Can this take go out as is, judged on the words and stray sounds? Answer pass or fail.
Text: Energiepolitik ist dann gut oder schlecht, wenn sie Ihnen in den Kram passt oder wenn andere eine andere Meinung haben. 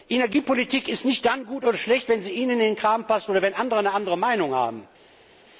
fail